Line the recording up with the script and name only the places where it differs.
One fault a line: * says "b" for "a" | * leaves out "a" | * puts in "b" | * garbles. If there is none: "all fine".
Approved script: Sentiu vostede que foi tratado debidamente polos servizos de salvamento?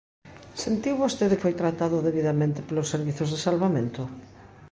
* leaves out "que"